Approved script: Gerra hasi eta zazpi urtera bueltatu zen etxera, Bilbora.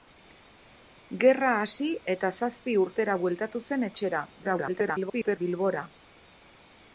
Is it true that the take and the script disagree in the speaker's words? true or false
true